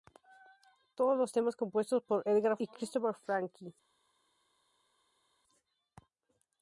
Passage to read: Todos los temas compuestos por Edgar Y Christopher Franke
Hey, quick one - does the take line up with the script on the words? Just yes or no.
yes